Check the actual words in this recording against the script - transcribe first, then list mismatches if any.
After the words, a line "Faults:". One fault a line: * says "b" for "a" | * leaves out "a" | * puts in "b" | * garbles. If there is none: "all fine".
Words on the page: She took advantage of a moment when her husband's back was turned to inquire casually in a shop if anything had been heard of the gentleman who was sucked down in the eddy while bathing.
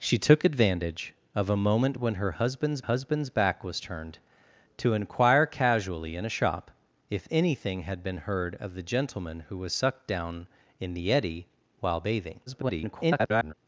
She took advantage of a moment when her husband's husband's back was turned to inquire casually in a shop if anything had been heard of the gentleman who was sucked down in the eddy while bathing. [garbled]
Faults:
* puts in "husband's"
* garbles